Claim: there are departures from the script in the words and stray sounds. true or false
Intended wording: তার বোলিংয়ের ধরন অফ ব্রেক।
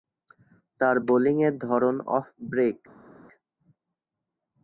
false